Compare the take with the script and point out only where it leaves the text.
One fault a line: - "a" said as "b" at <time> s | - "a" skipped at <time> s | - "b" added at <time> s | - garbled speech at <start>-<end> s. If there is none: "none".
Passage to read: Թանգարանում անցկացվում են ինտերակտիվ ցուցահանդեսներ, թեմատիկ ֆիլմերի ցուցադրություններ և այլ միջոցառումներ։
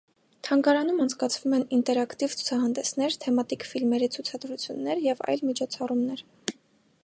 none